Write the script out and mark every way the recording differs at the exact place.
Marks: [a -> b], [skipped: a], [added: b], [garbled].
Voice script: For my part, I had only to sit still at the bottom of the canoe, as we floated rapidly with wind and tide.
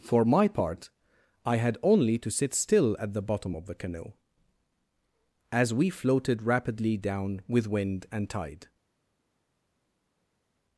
For my part, I had only to sit still at the bottom of the canoe, as we floated rapidly [added: down] with wind and tide.